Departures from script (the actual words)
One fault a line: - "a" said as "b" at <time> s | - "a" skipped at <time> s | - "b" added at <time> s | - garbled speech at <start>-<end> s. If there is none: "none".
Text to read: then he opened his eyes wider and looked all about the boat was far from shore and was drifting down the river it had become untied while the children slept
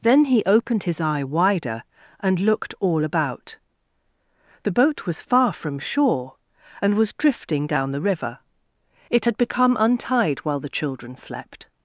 - "eyes" said as "eye" at 1.0 s